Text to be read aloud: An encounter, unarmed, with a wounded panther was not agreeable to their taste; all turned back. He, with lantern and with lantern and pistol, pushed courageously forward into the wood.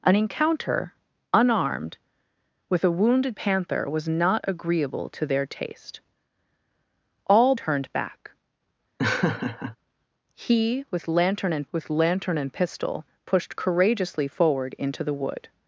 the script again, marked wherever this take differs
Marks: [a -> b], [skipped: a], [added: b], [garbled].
An encounter, unarmed, with a wounded panther was not agreeable to their taste; all turned back. He, with lantern and with lantern and pistol, pushed courageously forward into the wood.